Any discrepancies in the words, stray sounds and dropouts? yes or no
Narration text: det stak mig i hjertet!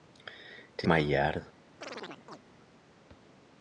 yes